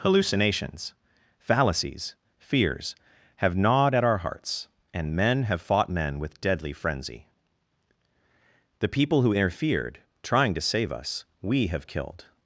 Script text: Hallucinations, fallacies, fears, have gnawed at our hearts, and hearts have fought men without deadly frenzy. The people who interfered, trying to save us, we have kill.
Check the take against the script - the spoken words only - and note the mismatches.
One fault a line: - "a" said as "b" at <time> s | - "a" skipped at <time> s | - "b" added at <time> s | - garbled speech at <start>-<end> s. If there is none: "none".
- "hearts" said as "men" at 5.2 s
- "without" said as "with" at 6.2 s
- "kill" said as "killed" at 11.8 s